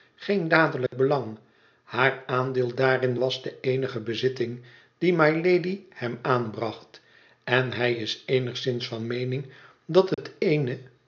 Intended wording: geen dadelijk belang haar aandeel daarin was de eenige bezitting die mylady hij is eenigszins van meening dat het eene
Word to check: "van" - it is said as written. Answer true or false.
true